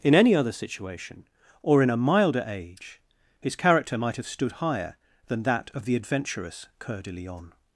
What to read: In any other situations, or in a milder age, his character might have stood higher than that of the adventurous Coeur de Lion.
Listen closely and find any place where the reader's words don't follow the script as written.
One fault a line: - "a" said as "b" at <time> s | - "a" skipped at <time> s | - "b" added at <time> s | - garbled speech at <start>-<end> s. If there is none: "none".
- "situations" said as "situation" at 0.5 s